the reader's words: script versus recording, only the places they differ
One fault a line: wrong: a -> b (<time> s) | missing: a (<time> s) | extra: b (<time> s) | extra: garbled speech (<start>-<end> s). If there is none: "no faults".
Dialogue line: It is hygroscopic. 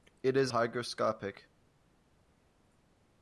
no faults